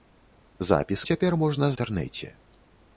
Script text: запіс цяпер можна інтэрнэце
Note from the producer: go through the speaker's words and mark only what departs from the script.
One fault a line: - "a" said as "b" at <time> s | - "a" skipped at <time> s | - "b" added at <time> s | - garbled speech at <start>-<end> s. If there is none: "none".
none